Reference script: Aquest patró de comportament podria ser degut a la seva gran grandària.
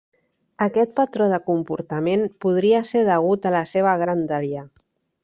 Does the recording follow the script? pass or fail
fail